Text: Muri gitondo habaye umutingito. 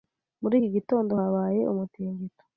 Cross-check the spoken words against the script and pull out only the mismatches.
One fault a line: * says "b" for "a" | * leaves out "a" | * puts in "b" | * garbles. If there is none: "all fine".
* puts in "iki"